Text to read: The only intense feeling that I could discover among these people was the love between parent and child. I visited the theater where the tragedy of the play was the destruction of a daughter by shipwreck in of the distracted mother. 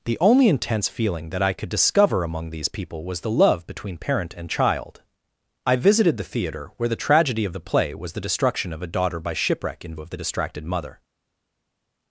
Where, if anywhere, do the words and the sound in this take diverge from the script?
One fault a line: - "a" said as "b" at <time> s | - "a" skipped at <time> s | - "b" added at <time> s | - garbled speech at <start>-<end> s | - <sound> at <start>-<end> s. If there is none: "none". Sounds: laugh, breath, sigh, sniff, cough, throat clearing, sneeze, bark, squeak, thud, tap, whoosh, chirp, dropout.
none